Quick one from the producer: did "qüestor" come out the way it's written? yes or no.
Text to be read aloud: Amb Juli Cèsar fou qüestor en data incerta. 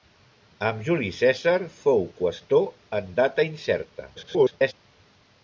yes